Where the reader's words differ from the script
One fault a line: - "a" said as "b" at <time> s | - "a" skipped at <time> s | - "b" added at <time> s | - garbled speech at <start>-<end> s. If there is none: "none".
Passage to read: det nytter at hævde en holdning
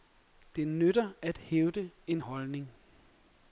none